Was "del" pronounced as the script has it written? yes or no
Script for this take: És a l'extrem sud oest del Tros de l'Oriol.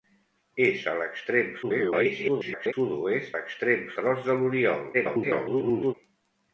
no